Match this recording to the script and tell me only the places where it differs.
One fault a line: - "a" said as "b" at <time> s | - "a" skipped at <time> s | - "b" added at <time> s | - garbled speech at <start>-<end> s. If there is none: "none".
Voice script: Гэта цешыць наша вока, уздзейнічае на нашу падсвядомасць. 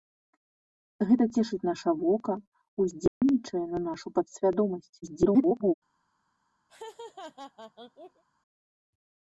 - garbled speech at 5.0-5.7 s